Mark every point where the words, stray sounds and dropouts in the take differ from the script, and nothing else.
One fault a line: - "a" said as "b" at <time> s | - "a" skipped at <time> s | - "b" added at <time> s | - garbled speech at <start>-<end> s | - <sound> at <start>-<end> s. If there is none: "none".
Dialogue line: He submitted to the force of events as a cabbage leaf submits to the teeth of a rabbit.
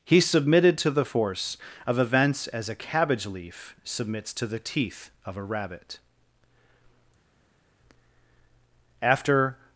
- "After" added at 9.0 s